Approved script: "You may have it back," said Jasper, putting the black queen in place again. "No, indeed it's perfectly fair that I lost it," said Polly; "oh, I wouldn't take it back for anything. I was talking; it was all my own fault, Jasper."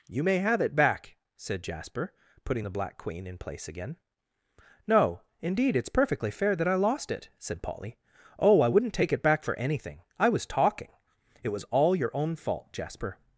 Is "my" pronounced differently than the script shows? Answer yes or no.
yes